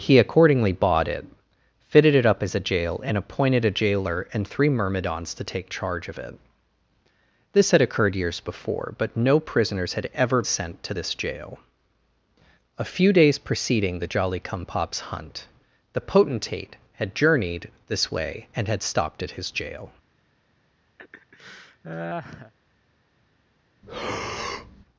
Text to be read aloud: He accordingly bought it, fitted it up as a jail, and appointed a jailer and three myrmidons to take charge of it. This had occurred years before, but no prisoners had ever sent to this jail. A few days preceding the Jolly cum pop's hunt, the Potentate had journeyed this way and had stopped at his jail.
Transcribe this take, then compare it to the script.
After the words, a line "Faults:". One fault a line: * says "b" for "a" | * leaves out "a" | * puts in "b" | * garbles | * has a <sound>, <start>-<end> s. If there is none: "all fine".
He accordingly bought it, fitted it up as a jail, and appointed a jailer and three myrmidons to take charge of it. This had occurred years before, but no prisoners had ever sent to this jail. A few days preceding the Jolly cum pop's hunt, the Potentate had journeyed this way and had stopped at his jail.
Faults:
* has a laugh, 21.0-22.5 s
* has a breath, 23.8-24.8 s